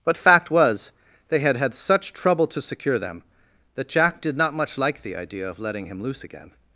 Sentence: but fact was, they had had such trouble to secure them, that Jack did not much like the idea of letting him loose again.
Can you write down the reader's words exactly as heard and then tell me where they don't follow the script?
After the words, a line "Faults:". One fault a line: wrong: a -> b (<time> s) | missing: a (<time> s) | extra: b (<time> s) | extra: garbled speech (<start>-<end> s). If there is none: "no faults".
but fact was, they had had such trouble to secure them, that Jack did not much like the idea of letting him loose again.
Faults:
no faults